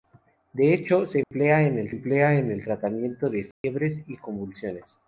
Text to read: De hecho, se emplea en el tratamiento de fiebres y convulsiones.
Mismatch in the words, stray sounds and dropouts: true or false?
true